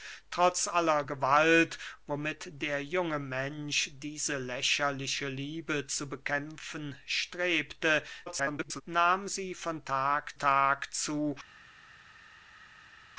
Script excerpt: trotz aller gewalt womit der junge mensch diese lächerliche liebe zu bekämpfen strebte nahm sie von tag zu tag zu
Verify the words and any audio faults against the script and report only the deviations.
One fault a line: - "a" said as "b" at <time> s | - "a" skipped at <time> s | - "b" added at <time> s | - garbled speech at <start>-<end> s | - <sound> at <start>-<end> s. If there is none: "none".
- garbled speech at 8.3-8.8 s
- "zu" skipped at 10.4 s